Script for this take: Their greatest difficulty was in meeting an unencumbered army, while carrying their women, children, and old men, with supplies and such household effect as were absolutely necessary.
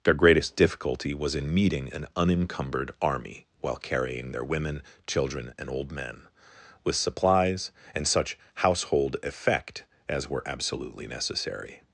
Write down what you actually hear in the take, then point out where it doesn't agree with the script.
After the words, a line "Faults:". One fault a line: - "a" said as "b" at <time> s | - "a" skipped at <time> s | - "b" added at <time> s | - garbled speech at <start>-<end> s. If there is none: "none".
Their greatest difficulty was in meeting an unencumbered army, while carrying their women, children, and old men, with supplies and such household effect as were absolutely necessary.
Faults:
none